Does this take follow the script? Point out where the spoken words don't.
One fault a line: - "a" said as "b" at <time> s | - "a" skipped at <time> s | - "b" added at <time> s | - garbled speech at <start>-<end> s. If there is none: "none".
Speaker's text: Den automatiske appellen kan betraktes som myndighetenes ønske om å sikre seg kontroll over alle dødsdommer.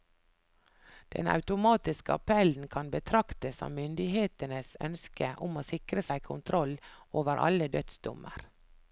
none